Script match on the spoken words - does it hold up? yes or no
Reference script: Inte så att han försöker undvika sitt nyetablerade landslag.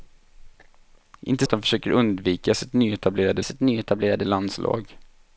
no